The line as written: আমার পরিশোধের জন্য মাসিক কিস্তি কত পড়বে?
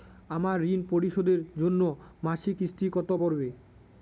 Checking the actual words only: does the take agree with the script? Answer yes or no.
no